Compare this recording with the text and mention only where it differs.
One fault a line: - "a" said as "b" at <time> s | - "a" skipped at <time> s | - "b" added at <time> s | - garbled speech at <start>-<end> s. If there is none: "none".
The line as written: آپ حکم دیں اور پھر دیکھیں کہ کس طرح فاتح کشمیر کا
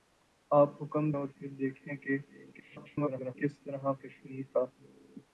- "دیں" skipped at 1.1 s
- garbled speech at 2.5-3.3 s
- "فاتح" skipped at 3.9 s